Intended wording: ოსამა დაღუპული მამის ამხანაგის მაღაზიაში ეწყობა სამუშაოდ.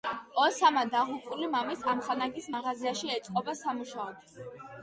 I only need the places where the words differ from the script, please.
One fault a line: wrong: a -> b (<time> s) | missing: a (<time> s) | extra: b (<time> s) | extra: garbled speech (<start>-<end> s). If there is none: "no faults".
no faults